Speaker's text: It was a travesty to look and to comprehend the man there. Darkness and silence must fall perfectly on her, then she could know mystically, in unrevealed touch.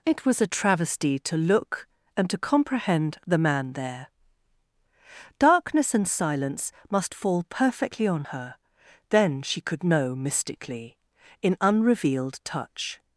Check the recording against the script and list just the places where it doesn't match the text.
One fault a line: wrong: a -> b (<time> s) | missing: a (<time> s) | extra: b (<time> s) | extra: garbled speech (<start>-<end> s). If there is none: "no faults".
no faults